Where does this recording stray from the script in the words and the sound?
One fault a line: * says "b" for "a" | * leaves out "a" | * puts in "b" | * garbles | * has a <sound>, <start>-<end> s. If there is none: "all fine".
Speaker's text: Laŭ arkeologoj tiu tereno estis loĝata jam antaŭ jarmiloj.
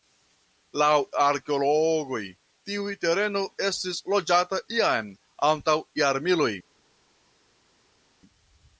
all fine